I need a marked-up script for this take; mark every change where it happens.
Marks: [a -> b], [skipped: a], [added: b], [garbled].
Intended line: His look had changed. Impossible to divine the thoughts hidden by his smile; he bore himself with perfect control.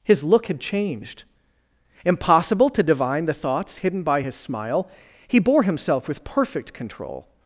His look had changed. Impossible to divine the thoughts hidden by his smile; he bore himself with perfect control.